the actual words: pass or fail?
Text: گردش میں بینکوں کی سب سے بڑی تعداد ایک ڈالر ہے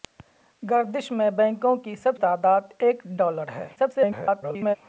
fail